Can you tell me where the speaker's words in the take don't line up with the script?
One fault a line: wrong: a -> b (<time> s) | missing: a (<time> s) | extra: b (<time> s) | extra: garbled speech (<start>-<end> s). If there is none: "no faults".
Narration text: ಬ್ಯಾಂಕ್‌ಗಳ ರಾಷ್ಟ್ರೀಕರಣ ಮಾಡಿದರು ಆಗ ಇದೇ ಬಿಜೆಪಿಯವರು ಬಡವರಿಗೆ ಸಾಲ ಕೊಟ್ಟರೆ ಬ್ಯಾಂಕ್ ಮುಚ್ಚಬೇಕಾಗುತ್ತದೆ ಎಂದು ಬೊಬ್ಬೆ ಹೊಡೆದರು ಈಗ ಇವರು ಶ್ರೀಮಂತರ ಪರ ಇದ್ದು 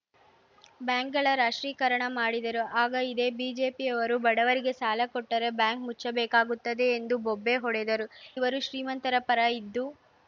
missing: ಈಗ (8.1 s)